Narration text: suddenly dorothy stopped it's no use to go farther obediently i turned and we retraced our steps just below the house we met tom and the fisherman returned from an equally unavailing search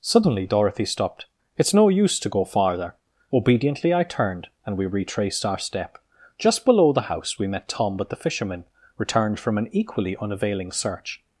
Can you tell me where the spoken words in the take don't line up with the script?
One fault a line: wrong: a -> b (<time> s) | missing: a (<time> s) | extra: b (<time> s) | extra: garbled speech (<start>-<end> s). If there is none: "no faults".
wrong: steps -> step (5.6 s)
wrong: and -> but (8.0 s)